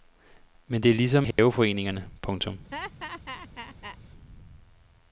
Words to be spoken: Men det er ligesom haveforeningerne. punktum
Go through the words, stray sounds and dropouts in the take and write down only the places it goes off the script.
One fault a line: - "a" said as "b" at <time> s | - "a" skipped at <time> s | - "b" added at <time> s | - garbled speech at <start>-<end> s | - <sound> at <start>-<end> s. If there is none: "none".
- dropout at 1.3-1.4 s
- laugh at 2.7-4.0 s